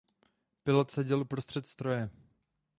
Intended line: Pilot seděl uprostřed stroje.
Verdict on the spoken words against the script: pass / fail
pass